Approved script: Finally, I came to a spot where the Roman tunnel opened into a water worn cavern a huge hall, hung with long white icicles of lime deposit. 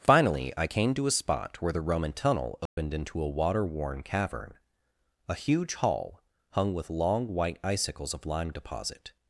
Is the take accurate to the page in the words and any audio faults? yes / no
no